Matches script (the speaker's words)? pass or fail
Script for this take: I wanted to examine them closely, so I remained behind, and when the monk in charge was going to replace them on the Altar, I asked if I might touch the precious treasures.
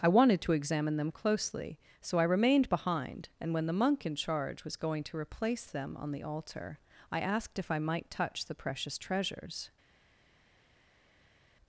pass